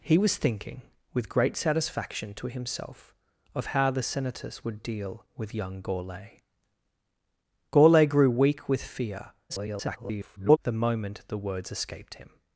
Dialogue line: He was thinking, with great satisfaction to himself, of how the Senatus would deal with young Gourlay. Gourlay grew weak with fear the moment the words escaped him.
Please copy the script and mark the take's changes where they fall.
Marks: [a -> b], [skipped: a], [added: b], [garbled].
He was thinking, with great satisfaction to himself, of how the Senatus would deal with young Gourlay. Gourlay grew weak with fear [garbled] the moment the words escaped him.